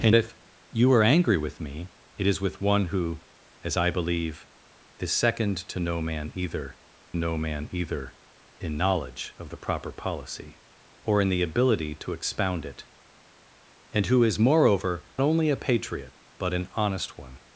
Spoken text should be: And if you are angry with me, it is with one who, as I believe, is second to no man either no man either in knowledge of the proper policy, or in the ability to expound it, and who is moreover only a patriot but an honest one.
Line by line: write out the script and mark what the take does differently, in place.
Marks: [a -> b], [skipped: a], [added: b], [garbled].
And if you are angry with me, it is with one who, as I believe, is second to no man either no man either in knowledge of the proper policy, or in the ability to expound it, and who is moreover only a patriot but an honest one.